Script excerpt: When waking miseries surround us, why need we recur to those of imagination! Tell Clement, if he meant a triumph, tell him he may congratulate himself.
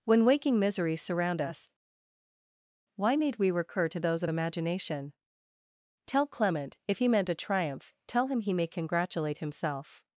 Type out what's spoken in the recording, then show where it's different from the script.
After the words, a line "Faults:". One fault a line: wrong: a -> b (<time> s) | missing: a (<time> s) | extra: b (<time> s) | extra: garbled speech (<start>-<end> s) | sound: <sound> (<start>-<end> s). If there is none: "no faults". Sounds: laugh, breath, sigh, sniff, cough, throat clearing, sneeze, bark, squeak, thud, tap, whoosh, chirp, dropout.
When waking miseries surround us, why need we recur to those of imagination! Tell Clement, if he meant a triumph, tell him he may congratulate himself.
Faults:
no faults